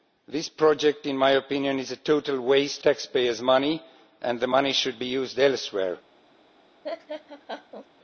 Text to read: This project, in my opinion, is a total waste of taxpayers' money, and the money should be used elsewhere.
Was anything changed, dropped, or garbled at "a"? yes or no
no